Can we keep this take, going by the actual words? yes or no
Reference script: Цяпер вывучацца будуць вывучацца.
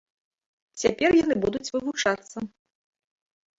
no